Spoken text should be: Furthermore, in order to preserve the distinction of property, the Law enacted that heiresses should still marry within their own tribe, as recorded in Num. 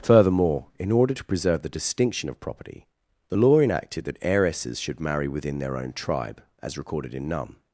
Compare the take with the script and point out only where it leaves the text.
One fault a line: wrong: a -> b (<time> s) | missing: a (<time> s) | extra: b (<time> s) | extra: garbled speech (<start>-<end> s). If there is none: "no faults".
missing: still (5.0 s)